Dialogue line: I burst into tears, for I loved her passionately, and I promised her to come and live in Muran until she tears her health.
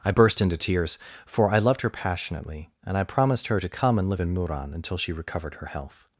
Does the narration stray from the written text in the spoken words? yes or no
yes